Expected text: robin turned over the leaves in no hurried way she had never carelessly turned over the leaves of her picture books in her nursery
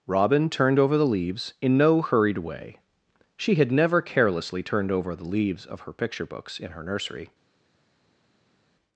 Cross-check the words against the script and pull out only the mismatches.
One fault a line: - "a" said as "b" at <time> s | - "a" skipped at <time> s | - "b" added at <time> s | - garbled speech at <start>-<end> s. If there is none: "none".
none